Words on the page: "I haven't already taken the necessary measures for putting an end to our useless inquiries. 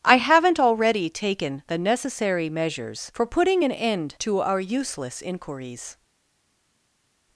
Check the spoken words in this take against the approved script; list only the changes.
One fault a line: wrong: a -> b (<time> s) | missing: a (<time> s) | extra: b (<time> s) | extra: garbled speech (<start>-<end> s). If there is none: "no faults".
no faults